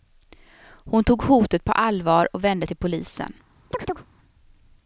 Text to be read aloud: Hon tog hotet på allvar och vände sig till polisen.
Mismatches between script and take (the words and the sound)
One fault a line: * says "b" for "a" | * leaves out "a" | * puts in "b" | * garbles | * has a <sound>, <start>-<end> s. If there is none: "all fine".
* leaves out "sig"
* has a chirp, 3.7-4.1 s